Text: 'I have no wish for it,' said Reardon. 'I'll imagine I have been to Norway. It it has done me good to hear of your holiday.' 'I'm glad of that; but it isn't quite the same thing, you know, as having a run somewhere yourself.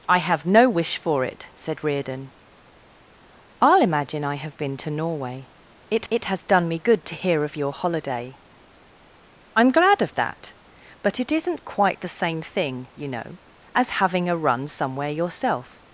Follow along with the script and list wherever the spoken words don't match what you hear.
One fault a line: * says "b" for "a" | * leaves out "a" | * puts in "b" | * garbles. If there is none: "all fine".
all fine